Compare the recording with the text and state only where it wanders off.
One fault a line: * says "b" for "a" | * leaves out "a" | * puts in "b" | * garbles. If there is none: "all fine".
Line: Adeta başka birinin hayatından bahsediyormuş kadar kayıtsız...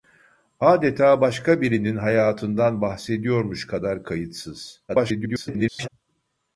* garbles